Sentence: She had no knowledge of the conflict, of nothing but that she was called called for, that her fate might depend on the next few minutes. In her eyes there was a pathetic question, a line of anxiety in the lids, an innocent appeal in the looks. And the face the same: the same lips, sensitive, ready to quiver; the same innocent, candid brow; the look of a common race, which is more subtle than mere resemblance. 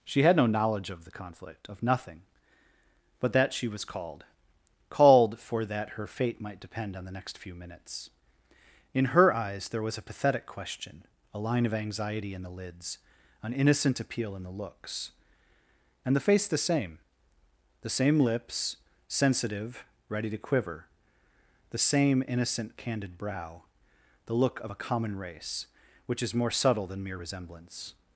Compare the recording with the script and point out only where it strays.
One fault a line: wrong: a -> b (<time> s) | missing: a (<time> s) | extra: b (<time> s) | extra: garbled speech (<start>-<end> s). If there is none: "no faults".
no faults